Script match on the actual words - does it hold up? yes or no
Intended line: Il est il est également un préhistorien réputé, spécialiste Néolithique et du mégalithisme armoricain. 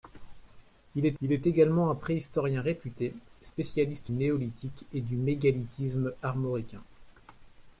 yes